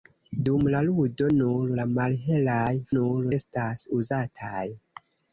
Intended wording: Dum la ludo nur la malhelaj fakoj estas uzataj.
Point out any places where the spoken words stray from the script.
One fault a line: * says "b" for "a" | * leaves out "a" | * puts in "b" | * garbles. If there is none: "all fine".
* says "nur" for "fakoj"